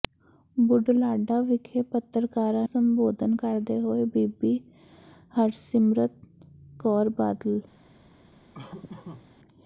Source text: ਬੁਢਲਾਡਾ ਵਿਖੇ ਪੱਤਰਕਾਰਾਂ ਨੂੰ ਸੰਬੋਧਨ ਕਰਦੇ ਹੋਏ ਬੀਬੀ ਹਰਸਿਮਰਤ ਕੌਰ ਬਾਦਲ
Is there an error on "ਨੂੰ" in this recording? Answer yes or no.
yes